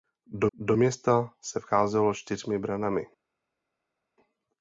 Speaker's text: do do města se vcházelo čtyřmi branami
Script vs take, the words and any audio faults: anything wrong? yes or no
no